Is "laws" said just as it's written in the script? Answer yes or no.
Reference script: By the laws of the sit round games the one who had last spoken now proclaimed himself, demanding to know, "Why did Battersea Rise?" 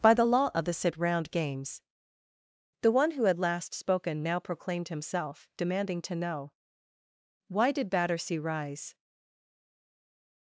no